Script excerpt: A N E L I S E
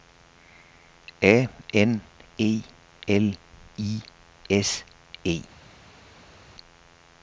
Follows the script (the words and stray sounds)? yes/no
yes